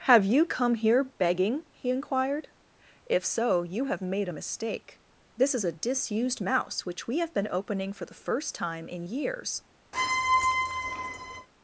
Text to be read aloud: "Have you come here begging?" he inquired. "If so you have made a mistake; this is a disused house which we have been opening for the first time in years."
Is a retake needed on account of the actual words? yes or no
yes